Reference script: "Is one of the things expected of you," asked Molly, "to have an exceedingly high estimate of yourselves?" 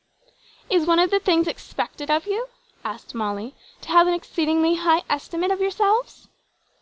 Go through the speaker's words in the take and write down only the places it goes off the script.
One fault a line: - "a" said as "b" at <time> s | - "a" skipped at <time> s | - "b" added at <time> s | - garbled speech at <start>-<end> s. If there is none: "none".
none